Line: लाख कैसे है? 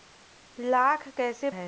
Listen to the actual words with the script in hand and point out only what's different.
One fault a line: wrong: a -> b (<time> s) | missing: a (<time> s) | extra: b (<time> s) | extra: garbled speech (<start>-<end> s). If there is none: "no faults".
no faults